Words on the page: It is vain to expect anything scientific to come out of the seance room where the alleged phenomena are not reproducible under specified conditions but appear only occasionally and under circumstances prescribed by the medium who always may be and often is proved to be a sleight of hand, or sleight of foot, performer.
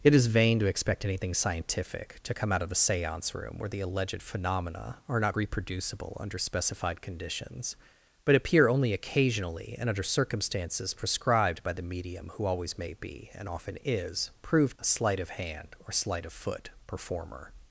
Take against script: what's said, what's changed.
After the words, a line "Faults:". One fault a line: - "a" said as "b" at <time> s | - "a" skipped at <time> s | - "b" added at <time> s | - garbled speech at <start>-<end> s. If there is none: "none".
It is vain to expect anything scientific to come out of the seance room where the alleged phenomena are not reproducible under specified conditions but appear only occasionally and under circumstances prescribed by the medium who always may be and often is proved a sleight of hand, or sleight of foot, performer.
Faults:
- "to be" skipped at 14.8 s